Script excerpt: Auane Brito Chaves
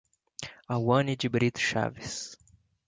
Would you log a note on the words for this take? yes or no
yes